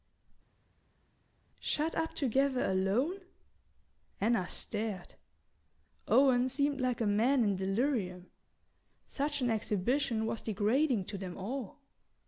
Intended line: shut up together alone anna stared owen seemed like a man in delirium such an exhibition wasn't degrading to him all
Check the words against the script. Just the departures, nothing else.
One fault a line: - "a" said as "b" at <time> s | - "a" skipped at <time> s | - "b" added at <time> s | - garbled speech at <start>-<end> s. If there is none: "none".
- "wasn't" said as "was" at 10.3 s
- "him" said as "them" at 11.2 s